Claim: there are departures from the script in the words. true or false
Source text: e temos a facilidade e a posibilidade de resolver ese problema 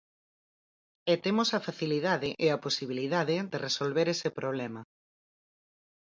false